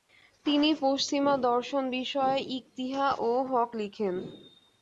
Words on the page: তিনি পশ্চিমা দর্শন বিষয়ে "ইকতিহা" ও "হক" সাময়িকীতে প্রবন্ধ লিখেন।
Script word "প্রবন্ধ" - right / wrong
wrong